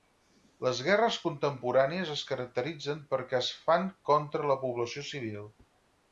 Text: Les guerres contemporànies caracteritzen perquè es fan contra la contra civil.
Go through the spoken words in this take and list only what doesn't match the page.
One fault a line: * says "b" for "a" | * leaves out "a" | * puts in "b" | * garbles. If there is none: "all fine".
* puts in "es"
* says "població" for "contra"